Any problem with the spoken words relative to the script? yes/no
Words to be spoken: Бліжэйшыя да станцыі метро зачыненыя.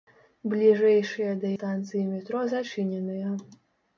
no